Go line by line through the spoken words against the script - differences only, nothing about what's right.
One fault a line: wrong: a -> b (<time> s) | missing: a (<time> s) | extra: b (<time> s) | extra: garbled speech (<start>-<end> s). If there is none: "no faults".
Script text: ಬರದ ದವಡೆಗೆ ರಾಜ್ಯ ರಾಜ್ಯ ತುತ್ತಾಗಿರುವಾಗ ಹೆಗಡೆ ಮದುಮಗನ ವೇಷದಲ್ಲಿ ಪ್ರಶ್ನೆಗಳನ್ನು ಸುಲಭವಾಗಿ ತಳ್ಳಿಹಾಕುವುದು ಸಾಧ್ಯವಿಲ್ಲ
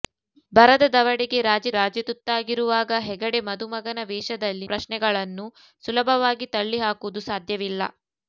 no faults